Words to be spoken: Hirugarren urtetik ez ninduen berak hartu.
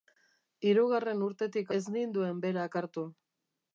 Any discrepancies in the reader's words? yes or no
no